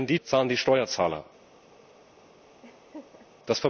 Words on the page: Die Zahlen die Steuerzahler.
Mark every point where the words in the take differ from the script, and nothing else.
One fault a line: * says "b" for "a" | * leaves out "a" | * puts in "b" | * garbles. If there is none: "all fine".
all fine